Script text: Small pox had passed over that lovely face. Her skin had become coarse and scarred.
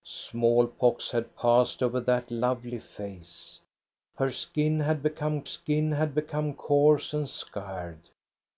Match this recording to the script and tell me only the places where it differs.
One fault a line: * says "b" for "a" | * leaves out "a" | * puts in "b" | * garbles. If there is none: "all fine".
* puts in "skin had become"